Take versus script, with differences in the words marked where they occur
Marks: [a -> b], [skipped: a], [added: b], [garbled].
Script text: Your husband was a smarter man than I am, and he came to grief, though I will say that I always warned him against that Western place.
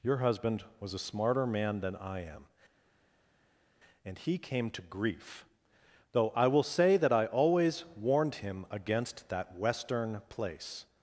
Your husband was a smarter man than I am, and he came to grief, though I will say that I always warned him against that Western place.